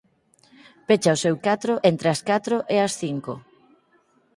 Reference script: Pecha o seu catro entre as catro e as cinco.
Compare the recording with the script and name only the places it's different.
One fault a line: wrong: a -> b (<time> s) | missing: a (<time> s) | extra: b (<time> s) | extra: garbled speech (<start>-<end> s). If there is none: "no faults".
no faults